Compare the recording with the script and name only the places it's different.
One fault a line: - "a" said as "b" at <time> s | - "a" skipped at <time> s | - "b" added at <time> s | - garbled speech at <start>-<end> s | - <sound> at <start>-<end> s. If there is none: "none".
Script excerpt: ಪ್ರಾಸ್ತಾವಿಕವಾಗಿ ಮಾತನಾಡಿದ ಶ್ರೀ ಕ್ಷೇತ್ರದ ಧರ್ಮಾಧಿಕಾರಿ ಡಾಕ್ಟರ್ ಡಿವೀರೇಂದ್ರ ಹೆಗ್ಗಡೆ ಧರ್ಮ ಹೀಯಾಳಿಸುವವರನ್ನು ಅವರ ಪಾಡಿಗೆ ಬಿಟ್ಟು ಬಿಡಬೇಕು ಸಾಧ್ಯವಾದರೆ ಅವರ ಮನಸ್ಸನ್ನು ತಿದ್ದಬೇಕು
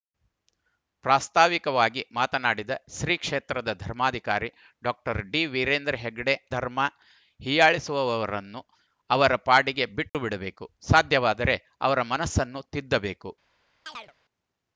- dropout at 10.1-10.1 s
- chirp at 13.9-14.1 s